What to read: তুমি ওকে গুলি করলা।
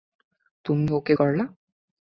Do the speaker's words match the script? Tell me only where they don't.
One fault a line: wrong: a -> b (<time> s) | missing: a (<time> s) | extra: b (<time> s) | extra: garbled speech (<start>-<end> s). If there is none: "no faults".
missing: গুলি (1.1 s)